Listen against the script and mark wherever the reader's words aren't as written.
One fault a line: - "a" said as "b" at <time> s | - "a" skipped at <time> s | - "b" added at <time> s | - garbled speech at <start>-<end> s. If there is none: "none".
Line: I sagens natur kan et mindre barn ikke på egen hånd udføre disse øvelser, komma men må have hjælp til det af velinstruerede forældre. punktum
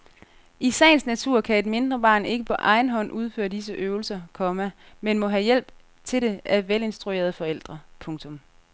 none